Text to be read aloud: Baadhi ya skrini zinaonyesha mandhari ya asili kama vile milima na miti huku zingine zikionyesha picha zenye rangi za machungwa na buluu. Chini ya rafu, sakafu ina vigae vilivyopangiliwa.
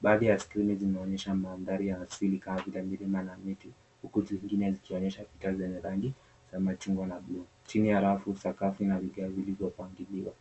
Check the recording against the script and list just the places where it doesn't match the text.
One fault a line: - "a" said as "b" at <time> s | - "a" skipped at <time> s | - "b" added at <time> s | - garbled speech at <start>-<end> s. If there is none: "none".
none